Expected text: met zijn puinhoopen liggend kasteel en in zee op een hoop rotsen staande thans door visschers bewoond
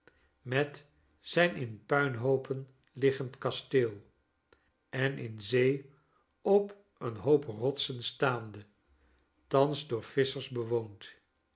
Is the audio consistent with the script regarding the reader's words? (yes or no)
no